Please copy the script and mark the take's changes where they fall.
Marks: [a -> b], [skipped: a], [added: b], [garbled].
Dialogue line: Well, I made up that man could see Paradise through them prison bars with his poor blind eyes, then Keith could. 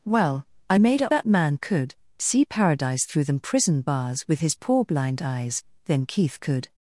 Well, I made up that man could see Paradise through them prison bars with his poor blind eyes, then Keith could.